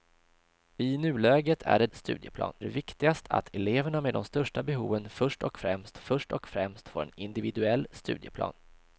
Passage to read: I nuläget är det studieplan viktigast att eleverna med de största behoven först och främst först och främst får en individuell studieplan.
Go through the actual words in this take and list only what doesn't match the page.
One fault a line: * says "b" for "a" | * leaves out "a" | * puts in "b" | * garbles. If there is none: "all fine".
all fine